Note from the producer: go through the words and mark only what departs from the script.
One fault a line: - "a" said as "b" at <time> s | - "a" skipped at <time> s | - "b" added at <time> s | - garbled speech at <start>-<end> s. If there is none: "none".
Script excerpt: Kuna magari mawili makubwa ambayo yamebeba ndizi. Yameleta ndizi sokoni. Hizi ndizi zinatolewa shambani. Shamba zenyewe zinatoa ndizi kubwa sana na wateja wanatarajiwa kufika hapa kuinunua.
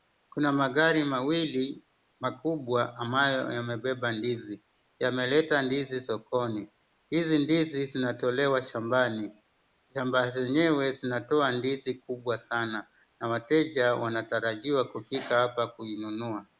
none